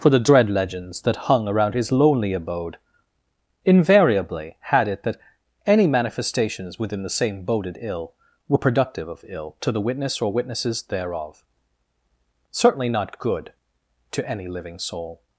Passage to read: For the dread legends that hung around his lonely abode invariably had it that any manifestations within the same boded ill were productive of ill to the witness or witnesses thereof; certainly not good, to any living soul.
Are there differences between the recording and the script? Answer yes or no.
no